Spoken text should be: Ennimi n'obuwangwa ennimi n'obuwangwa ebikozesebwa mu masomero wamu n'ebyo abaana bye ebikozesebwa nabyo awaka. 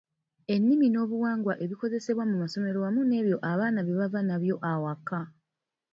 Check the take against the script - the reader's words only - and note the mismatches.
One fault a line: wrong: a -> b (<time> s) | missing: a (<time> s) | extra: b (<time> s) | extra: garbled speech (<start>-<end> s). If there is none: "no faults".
missing: ennimi n'obuwangwa (1.5 s)
wrong: ebikozesebwa -> bava (4.0 s)